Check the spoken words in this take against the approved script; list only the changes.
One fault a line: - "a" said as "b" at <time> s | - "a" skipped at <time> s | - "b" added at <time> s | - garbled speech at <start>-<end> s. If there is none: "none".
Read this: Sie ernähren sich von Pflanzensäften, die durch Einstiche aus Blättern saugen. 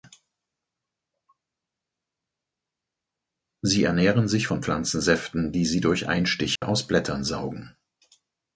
- "sie" added at 5.6 s